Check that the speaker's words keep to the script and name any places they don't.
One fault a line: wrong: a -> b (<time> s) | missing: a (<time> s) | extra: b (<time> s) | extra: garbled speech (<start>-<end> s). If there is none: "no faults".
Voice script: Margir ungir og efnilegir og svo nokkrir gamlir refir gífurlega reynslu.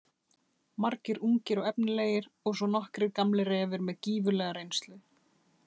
extra: með (3.9 s)